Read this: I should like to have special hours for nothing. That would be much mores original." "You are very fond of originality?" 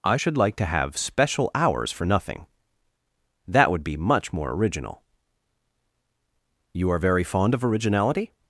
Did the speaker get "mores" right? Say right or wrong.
wrong